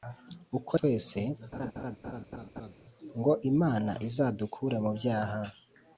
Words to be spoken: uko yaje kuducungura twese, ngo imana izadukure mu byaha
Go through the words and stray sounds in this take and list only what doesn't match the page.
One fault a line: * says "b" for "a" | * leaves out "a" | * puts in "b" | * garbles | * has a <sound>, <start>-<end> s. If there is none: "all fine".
* leaves out "yaje kuducungura"
* has a laugh, 1.5-2.7 s